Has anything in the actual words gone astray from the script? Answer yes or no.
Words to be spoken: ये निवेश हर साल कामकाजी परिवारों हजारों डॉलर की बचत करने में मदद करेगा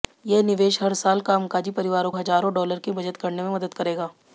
no